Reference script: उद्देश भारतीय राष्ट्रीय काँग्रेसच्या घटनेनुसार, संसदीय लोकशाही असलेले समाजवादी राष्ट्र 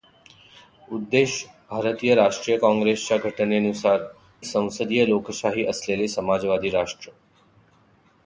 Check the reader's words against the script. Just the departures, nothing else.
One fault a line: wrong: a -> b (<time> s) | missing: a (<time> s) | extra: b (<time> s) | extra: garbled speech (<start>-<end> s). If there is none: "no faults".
no faults